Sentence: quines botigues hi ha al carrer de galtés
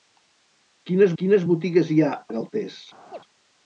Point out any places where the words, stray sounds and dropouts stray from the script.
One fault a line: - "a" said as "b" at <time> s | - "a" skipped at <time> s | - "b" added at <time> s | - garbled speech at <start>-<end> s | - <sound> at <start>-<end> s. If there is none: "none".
- "quines" added at 1.2 s
- "al carrer" skipped at 2.2 s
- chirp at 3.1-3.2 s